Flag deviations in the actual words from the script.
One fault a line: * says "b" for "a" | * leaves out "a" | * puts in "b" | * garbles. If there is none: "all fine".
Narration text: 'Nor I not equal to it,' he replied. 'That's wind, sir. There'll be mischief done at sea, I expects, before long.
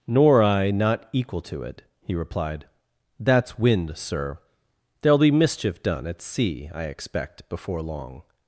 * says "expect" for "expects"